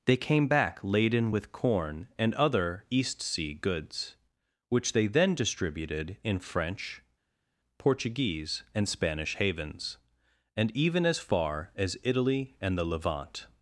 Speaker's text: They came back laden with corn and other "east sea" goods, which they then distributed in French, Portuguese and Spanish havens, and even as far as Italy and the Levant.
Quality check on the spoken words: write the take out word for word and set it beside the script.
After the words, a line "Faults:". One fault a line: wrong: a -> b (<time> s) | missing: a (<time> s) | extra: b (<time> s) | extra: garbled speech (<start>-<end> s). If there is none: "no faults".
They came back laden with corn and other "east sea" goods, which they then distributed in French, Portuguese and Spanish havens, and even as far as Italy and the Levant.
Faults:
no faults